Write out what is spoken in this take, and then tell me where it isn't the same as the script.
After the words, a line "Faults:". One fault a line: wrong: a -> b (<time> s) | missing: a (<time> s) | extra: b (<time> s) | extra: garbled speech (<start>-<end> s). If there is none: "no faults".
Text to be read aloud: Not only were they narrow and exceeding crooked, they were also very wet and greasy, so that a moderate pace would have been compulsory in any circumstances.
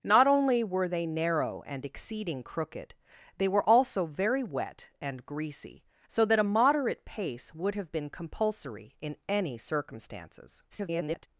Not only were they narrow and exceeding crooked, they were also very wet and greasy, so that a moderate pace would have been compulsory in any circumstances. [garbled]
Faults:
extra: garbled speech (10.7-11.3 s)